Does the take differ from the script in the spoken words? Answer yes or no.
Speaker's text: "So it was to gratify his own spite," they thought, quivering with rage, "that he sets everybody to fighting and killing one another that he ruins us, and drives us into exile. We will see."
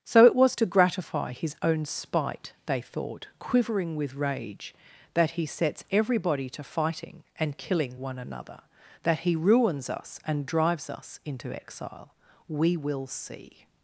no